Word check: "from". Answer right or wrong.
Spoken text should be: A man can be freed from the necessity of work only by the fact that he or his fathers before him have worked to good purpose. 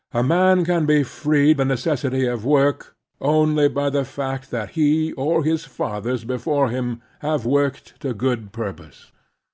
wrong